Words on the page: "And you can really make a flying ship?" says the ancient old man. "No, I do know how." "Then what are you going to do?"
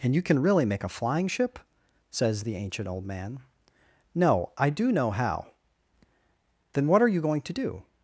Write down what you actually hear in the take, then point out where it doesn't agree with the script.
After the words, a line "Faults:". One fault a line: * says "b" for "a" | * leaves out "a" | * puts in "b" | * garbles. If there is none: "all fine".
"And you can really make a flying ship?" says the ancient old man. "No, I do know how." "Then what are you going to do?"
Faults:
all fine